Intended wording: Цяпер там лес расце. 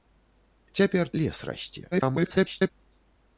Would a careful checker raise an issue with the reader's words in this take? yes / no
yes